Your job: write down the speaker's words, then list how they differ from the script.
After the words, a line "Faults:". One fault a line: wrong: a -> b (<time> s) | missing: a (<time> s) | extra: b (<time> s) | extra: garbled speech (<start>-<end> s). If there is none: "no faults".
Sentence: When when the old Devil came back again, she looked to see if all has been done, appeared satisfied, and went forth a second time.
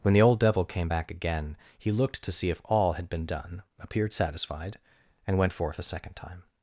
When the old Devil came back again, he looked to see if all had been done, appeared satisfied, and went forth a second time.
Faults:
missing: when (0.1 s)
wrong: she -> he (1.8 s)
wrong: has -> had (2.9 s)